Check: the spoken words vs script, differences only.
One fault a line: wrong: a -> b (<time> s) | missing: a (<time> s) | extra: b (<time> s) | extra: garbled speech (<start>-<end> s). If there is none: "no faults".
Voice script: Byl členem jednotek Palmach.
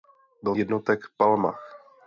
missing: členem (0.6 s)